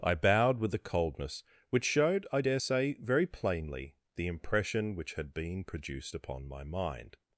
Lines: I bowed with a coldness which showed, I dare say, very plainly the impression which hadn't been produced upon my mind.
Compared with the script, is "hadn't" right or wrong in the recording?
wrong